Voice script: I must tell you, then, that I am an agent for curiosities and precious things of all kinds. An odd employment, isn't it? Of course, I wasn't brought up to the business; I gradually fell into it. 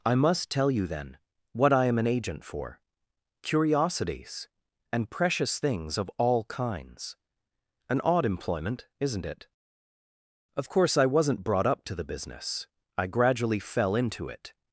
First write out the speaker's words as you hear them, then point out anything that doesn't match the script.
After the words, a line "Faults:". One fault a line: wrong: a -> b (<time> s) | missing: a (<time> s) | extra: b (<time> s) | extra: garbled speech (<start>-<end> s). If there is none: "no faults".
I must tell you, then, what I am an agent for curiosities and precious things of all kinds. An odd employment, isn't it? Of course, I wasn't brought up to the business; I gradually fell into it.
Faults:
wrong: that -> what (1.5 s)